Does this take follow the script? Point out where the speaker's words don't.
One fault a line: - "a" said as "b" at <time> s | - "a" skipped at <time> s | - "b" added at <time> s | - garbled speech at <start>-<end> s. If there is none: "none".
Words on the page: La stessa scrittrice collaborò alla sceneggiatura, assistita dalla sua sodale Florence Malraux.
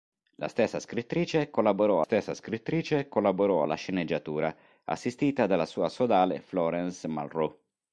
- "stessa scrittrice collaborò" added at 2.0 s